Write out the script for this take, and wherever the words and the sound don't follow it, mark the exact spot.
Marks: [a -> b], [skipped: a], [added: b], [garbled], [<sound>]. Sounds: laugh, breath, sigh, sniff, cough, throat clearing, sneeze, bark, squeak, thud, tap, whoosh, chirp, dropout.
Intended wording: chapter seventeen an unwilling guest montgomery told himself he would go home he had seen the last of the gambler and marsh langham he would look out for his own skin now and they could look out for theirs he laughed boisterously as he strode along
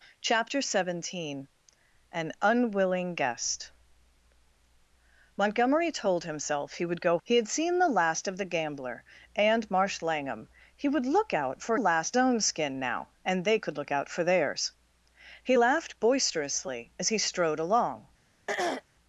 chapter seventeen an unwilling guest montgomery told himself he would go [skipped: home] he had seen the last of the gambler and marsh langham he would look out for [his -> last] own skin now and they could look out for theirs he laughed boisterously as he strode along [throat clearing]